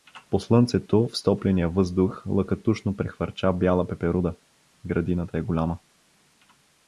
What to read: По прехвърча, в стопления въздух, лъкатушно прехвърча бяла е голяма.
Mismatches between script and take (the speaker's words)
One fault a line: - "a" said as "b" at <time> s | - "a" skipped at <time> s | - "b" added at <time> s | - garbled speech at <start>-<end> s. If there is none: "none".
- "прехвърча" said as "слънцето" at 0.4 s
- "пеперуда Градината" added at 3.9 s